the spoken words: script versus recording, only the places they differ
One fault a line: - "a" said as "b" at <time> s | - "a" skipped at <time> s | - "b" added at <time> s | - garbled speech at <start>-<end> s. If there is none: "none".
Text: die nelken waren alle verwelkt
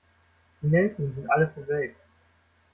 - "waren" said as "sind" at 1.1 s